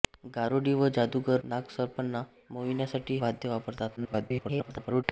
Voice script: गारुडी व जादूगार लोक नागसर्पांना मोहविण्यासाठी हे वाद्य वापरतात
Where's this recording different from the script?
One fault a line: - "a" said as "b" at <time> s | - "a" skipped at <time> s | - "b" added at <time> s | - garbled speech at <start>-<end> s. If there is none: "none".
- "लोक" skipped at 1.4 s
- "हे" skipped at 3.2 s
- garbled speech at 4.0-5.0 s